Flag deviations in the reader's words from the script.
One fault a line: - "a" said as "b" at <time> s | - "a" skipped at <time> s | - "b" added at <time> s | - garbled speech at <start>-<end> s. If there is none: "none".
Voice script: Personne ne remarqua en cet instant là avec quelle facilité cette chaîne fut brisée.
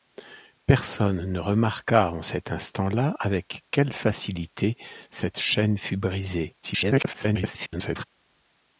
- garbled speech at 6.6-8.0 s